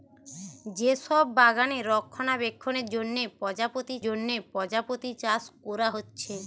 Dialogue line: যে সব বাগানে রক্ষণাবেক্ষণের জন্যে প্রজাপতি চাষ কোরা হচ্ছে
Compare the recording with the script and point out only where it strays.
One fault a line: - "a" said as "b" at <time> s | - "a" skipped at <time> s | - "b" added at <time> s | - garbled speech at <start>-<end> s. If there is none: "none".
- "জন্যে প্রজাপতি" added at 4.0 s